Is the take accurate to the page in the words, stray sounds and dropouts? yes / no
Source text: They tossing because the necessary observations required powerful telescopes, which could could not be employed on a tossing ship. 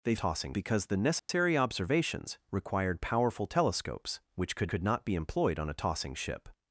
no